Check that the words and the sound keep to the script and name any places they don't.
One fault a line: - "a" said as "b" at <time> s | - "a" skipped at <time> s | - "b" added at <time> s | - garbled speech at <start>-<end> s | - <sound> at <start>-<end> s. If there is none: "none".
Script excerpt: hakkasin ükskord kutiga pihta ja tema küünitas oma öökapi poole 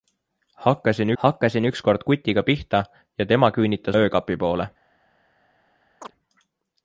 - "hakkasin" added at 1.2 s
- "oma" skipped at 4.0 s
- chirp at 6.0-6.1 s